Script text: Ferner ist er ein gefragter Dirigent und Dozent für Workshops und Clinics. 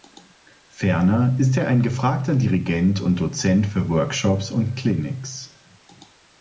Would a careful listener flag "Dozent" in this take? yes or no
no